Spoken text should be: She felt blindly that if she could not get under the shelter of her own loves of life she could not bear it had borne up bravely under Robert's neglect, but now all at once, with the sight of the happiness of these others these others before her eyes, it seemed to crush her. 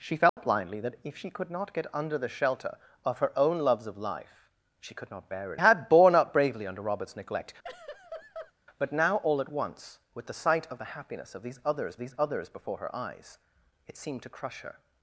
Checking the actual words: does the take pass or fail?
pass